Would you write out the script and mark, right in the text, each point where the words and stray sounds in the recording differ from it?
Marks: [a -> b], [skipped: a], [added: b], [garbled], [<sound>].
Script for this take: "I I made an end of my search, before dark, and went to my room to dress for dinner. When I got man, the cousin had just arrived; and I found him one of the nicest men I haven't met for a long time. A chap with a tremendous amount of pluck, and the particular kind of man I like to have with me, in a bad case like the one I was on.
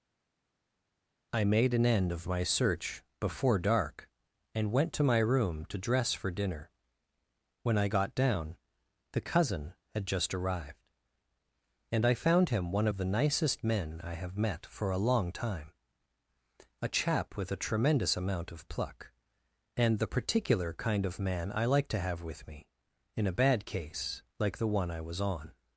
"I [skipped: I] made an end of my search, before dark, and went to my room to dress for dinner. When I got [man, -> down] the cousin had just arrived; and I found him one of the nicest men I [haven't -> have] met for a long time. A chap with a tremendous amount of pluck, and the particular kind of man I like to have with me, in a bad case like the one I was on.